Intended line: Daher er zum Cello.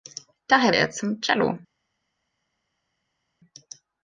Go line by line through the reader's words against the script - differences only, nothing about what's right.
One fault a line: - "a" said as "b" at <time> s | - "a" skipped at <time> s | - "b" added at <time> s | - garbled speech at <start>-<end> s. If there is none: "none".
none